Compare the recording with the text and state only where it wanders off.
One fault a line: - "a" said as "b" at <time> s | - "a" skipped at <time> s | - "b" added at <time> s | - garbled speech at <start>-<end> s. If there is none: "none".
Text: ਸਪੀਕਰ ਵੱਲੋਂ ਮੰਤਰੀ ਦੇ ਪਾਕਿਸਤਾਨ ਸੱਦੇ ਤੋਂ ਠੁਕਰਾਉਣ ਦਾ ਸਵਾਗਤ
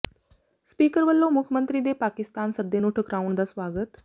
- "ਮੁੱਖ" added at 1.3 s
- "ਤੋਂ" said as "ਨੂੰ" at 2.8 s